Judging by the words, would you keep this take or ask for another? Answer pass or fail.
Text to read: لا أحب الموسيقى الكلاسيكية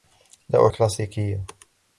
fail